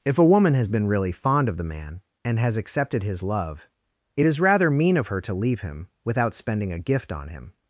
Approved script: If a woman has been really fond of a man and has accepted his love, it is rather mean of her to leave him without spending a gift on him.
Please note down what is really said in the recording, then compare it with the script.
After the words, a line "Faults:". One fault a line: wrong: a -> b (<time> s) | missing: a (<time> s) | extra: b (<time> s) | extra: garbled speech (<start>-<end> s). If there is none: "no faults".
If a woman has been really fond of the man and has accepted his love, it is rather mean of her to leave him without spending a gift on him.
Faults:
wrong: a -> the (1.6 s)